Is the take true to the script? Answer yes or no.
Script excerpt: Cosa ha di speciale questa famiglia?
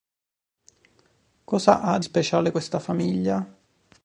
no